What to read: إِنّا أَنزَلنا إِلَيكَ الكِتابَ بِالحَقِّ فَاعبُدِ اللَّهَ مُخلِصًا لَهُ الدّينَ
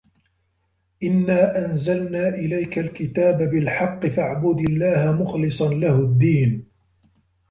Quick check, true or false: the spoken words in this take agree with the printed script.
true